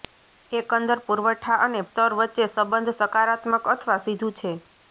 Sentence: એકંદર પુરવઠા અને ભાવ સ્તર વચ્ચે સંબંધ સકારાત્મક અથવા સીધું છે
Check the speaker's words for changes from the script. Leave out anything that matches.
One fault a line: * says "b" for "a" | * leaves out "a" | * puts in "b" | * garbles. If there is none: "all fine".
* leaves out "ભાવ"